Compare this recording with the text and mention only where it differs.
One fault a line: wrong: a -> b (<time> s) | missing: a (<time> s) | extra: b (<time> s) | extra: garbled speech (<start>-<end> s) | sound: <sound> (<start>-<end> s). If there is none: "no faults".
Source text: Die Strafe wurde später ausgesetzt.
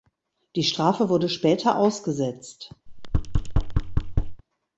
sound: thud (2.9-4.4 s)